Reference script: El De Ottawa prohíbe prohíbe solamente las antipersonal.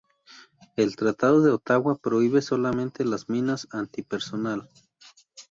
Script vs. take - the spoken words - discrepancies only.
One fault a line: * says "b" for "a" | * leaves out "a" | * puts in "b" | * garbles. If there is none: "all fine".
* puts in "Tratado"
* leaves out "prohíbe"
* puts in "minas"